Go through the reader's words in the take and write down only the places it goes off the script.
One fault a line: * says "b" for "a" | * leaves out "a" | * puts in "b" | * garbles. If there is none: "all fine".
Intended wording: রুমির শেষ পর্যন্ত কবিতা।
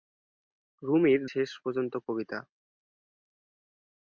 all fine